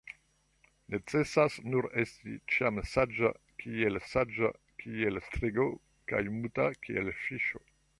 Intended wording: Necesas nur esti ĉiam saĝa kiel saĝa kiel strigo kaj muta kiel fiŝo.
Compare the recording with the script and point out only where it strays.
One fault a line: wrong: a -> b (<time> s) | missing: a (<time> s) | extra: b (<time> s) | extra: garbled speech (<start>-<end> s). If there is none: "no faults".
no faults